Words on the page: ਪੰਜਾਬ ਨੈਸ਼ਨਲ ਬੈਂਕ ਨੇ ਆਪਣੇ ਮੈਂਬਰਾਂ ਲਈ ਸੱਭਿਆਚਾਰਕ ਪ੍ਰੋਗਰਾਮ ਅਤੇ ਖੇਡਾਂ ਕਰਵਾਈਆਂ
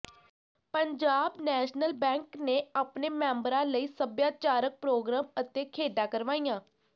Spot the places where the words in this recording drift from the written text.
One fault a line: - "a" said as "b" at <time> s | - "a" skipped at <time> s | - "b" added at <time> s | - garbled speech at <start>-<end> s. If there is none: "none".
none